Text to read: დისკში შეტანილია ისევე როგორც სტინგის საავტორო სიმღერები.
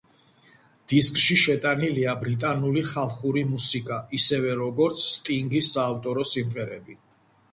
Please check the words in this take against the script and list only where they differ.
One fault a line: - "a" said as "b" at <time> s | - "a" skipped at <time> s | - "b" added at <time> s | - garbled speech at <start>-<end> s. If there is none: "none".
- "ბრიტანული ხალხური მუსიკა" added at 2.2 s